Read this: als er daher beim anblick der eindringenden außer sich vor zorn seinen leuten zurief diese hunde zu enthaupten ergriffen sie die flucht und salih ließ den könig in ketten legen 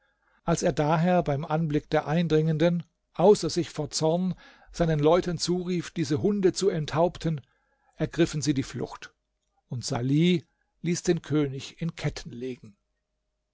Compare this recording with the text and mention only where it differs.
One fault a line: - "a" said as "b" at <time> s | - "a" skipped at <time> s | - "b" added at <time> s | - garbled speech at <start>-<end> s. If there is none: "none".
none